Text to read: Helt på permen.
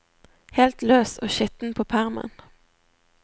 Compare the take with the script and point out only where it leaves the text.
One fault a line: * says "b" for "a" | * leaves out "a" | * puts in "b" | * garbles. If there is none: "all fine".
* puts in "løs og skitten"